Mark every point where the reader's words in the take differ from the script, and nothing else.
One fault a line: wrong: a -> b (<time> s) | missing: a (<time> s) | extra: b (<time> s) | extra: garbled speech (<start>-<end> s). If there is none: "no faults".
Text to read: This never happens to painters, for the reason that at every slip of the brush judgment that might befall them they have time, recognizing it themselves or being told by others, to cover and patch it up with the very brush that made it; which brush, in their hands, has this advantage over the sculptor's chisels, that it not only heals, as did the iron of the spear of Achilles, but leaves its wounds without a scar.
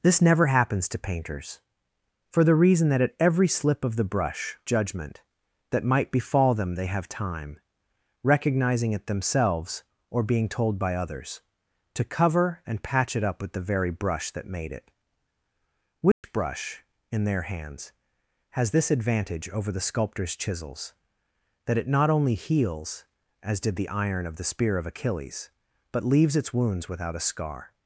no faults